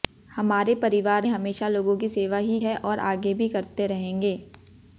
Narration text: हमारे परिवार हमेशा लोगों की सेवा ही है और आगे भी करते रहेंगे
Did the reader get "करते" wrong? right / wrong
right